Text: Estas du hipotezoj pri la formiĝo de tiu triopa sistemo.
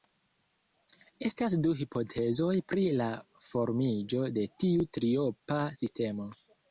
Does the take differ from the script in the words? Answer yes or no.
no